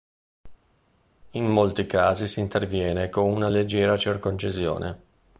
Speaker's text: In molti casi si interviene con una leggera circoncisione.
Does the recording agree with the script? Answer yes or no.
yes